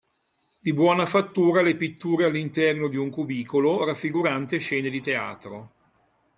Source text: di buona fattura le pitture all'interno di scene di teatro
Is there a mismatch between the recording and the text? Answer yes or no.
yes